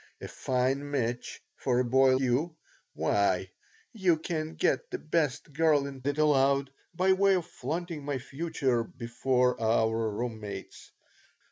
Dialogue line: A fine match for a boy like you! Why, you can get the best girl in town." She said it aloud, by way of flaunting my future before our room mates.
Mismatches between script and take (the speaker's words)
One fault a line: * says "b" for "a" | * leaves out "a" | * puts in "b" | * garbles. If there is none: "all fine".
* leaves out "like"
* leaves out "town She said"